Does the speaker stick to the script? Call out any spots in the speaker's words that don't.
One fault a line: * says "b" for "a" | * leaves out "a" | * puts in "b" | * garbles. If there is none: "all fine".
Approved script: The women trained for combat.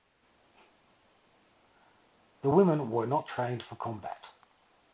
* puts in "were not"